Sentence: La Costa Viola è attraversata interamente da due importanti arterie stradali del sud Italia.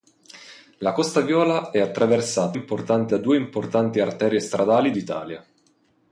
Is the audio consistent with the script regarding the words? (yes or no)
no